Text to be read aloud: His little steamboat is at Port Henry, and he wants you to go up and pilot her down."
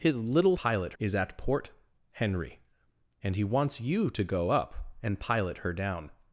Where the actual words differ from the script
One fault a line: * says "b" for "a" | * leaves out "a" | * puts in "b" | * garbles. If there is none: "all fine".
* says "pilot" for "steamboat"